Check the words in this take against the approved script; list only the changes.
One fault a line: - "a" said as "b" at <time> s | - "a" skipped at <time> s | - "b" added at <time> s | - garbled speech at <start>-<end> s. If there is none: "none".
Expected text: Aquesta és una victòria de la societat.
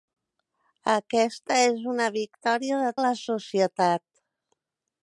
none